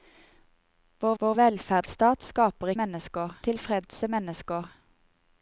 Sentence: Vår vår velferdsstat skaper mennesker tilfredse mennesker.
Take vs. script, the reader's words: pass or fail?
pass